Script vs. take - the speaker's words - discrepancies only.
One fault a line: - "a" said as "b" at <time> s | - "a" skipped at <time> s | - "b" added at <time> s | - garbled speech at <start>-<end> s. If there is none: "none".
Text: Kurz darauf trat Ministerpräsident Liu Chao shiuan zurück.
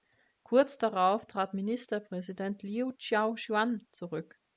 none